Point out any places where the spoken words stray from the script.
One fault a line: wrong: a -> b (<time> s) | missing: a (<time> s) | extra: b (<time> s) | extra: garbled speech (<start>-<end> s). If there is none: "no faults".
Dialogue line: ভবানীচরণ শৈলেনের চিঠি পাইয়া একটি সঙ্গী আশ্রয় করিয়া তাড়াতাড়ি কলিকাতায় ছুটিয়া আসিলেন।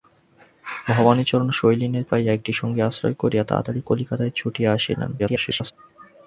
missing: চিঠি (2.0 s)
extra: garbled speech (5.2-5.7 s)